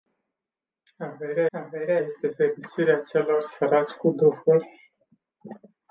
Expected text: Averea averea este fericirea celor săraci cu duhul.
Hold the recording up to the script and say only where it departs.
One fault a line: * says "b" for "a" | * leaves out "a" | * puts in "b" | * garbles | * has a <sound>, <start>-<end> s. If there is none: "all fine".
all fine